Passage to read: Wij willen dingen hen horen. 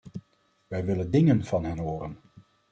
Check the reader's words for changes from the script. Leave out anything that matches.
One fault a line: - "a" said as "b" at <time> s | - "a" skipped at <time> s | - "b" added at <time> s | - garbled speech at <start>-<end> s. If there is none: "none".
- "van" added at 1.4 s